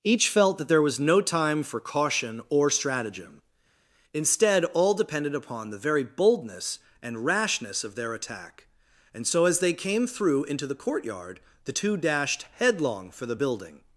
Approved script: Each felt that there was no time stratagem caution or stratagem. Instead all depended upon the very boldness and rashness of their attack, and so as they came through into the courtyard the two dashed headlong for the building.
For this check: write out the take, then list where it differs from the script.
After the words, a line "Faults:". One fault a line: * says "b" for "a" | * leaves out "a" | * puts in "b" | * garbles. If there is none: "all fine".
Each felt that there was no time for caution or stratagem. Instead all depended upon the very boldness and rashness of their attack, and so as they came through into the courtyard the two dashed headlong for the building.
Faults:
* says "for" for "stratagem"